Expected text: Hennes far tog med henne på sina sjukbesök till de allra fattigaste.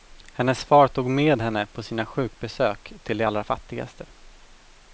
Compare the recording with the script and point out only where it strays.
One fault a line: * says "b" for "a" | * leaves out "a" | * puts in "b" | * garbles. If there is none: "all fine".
all fine